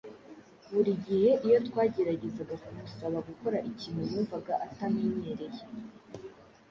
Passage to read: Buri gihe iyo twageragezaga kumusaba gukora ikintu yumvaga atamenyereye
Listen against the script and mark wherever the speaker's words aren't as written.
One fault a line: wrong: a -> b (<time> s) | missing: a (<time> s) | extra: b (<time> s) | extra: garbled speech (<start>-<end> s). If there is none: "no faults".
no faults